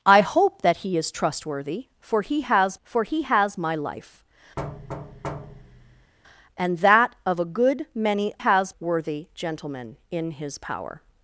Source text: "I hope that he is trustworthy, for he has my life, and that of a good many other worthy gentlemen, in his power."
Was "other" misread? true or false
true